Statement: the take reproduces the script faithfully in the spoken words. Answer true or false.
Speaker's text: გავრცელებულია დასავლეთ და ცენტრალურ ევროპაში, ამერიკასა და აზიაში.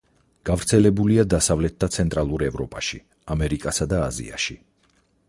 true